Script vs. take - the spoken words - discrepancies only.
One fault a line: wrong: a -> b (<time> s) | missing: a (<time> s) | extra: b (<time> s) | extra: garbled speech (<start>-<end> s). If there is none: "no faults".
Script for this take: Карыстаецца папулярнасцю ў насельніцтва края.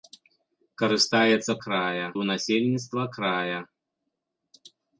wrong: папулярнасцю -> края (1.7 s)